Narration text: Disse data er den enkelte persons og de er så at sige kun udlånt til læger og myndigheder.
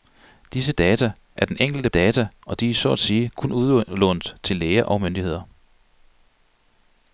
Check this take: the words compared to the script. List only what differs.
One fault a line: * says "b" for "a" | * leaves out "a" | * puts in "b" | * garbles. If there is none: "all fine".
* says "data" for "persons"